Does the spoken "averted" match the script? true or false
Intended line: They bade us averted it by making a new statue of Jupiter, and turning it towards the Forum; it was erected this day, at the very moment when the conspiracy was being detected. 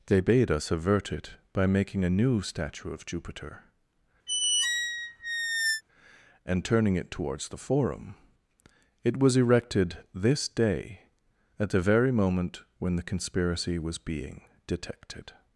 false